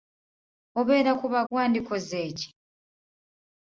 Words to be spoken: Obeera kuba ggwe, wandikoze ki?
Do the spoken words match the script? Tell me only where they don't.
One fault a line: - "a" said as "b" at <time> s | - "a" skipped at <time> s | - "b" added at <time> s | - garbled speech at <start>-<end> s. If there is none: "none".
- "ggwe" skipped at 1.4 s